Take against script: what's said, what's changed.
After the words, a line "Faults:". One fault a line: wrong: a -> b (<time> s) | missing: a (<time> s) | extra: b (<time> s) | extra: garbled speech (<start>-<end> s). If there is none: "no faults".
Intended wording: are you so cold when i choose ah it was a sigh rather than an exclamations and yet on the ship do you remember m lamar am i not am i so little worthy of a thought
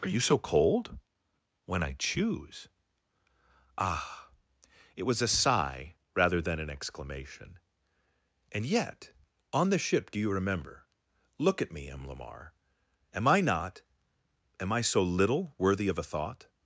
are you so cold when i choose ah it was a sigh rather than an exclamation and yet on the ship do you remember look at me m lamar am i not am i so little worthy of a thought
Faults:
wrong: exclamations -> exclamation (6.7 s)
extra: look at me (11.4 s)